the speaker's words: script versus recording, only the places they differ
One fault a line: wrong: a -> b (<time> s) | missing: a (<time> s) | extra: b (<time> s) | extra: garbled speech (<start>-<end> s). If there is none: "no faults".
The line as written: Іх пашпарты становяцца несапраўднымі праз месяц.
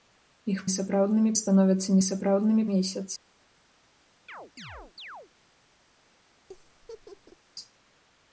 wrong: пашпарты -> несапраўднымі (0.7 s)
missing: праз (2.7 s)